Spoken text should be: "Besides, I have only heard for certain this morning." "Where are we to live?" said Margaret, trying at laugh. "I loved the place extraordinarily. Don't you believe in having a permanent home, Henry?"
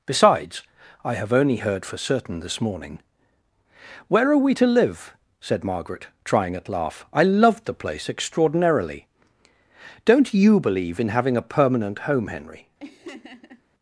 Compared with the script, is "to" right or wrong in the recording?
right